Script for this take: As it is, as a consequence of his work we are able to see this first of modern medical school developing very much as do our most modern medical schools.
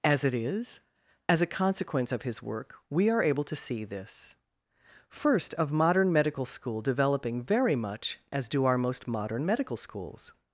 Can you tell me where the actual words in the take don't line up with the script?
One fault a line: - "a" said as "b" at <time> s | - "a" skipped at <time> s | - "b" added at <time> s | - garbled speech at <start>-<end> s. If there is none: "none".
none